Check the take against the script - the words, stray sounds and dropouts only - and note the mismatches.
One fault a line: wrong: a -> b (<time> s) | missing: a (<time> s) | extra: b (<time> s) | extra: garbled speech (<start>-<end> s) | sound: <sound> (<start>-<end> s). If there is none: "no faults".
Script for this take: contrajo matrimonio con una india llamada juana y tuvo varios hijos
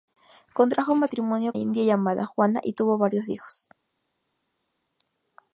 missing: con una (1.5 s)